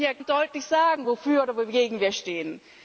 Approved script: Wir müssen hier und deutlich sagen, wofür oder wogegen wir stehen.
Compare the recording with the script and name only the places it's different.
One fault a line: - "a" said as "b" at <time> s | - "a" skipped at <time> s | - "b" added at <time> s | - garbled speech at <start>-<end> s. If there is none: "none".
none